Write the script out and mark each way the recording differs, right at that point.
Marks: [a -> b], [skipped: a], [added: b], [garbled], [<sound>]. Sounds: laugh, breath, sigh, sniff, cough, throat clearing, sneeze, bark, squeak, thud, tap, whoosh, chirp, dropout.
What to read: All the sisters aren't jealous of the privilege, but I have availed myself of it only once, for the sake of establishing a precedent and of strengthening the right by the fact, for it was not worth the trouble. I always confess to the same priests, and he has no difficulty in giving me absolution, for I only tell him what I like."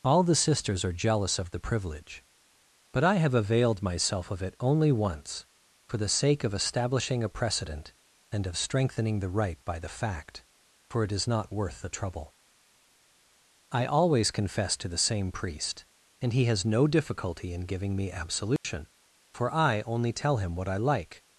All the sisters [aren't -> are] jealous of the privilege, but I have availed myself of it only once, for the sake of establishing a precedent and of strengthening the right by the fact, for it [was -> is] not worth the trouble. I always confess to the same [priests, -> priest] and he has no difficulty in giving me absolution, [dropout] for I only tell him what I like."